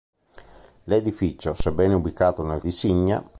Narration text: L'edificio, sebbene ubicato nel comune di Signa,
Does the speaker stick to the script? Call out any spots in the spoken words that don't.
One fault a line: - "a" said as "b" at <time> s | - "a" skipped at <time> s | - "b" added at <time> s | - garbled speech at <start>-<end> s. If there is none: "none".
- "comune" skipped at 2.6 s